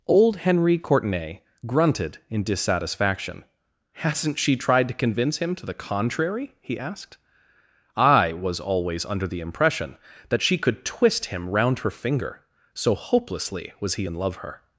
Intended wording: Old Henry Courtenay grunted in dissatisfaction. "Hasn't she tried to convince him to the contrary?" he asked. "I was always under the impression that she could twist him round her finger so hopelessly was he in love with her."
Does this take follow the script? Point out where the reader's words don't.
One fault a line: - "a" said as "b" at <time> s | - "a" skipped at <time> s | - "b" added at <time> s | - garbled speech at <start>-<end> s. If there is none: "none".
- "with" skipped at 14.4 s